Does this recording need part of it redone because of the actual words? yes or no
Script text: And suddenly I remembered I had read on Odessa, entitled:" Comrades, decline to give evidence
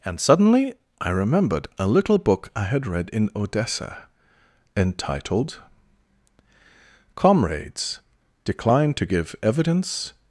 yes